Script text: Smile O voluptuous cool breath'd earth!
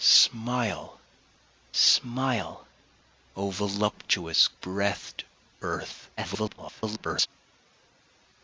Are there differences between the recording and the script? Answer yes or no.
yes